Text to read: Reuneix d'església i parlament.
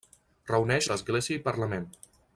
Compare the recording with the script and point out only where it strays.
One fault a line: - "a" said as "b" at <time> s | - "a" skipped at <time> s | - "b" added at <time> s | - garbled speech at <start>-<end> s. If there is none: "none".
none